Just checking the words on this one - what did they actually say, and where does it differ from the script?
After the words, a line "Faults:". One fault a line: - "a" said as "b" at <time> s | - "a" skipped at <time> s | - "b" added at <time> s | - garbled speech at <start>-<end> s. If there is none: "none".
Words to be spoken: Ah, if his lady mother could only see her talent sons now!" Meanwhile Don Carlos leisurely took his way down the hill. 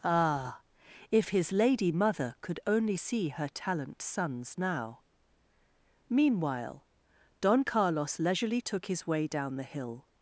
Ah, if his lady mother could only see her talent sons now!" Meanwhile Don Carlos leisurely took his way down the hill.
Faults:
none